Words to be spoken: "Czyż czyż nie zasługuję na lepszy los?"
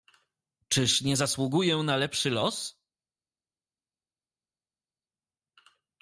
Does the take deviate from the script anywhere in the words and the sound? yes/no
yes